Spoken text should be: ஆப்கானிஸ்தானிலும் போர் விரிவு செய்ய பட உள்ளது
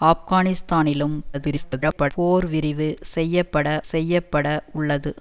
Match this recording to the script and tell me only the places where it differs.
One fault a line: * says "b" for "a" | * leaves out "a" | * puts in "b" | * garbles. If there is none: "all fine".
* garbles
* puts in "செய்ய பட"